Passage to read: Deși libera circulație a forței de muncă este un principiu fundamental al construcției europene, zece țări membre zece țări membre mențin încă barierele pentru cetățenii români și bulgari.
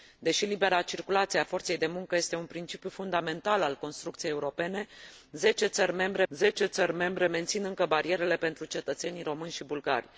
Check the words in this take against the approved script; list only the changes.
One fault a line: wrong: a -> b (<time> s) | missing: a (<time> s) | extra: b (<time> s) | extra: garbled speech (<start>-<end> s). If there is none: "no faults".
no faults